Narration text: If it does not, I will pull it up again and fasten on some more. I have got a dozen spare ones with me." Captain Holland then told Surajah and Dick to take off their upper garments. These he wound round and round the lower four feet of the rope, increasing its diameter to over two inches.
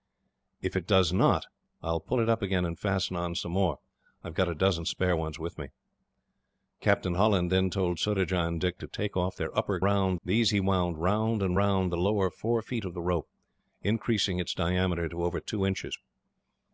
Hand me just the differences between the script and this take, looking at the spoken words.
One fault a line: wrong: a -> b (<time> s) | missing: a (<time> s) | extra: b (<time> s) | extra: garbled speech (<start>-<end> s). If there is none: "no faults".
wrong: garments -> round (9.8 s)